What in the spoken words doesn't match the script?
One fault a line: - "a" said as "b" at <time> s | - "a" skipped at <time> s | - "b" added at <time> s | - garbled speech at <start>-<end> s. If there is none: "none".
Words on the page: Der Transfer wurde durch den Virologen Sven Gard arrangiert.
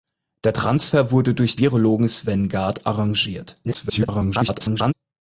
- "den" skipped at 1.6 s
- garbled speech at 3.6-4.9 s